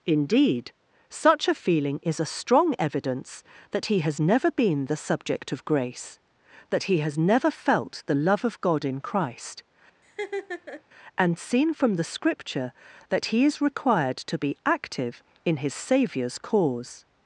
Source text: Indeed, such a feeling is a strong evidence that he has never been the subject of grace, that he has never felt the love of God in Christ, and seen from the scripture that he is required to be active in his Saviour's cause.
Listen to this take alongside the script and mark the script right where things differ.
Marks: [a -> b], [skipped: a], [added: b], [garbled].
Indeed, such a feeling is a strong evidence that he has never been the subject of grace, that he has never felt the love of God in Christ, and seen from the scripture that he is required to be active in his Saviour's cause.